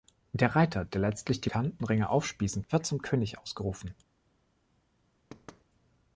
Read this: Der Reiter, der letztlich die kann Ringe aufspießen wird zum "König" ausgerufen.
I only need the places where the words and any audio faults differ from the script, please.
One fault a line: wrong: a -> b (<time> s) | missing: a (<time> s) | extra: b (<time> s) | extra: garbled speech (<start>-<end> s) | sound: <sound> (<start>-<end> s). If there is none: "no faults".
sound: thud (5.3-5.6 s)